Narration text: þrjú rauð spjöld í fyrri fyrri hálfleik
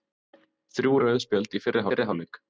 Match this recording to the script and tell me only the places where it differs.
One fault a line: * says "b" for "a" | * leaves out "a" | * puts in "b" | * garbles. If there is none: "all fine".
all fine